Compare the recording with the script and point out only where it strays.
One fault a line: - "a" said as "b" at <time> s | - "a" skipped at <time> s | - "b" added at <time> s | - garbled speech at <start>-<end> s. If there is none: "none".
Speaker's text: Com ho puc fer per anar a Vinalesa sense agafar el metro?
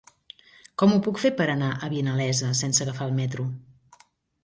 none